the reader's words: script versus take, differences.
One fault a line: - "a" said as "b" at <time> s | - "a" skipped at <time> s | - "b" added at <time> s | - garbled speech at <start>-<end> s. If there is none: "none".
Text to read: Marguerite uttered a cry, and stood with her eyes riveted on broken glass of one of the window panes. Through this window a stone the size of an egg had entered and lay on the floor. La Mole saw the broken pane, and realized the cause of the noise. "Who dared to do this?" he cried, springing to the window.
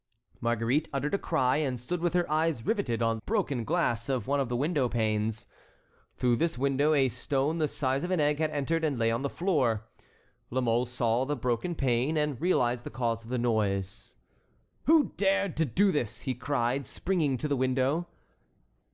none